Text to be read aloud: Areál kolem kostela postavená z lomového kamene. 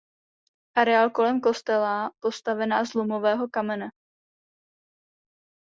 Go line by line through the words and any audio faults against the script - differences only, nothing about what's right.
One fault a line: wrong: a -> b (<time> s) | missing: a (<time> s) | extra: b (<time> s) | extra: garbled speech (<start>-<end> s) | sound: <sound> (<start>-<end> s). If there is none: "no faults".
no faults